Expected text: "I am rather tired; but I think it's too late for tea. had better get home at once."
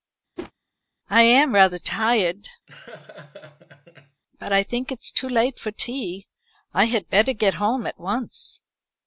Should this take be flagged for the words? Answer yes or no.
yes